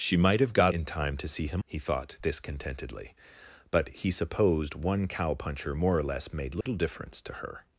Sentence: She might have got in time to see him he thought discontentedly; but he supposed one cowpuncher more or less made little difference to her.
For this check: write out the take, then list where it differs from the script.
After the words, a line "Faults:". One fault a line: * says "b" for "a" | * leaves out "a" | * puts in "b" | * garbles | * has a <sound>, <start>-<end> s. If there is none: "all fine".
She might have got in time to see him he thought discontentedly; but he supposed one cowpuncher more or less made little difference to her.
Faults:
* has a dropout, 6.6-6.7 s